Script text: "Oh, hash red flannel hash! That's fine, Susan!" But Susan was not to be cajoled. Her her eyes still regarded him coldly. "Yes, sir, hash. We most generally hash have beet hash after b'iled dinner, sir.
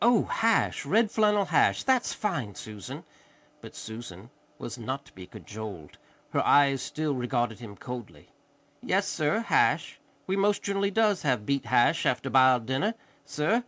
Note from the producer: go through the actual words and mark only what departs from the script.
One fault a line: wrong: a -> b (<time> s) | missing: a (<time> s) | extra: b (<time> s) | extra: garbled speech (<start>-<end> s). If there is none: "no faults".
missing: her (6.4 s)
wrong: hash -> does (10.9 s)